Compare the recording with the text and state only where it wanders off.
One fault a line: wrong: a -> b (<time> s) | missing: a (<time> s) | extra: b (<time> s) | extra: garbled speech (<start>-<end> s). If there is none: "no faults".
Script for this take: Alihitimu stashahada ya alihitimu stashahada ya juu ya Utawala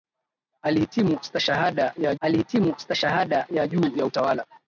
no faults